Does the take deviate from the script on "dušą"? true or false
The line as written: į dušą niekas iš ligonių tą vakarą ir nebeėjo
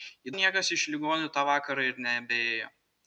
true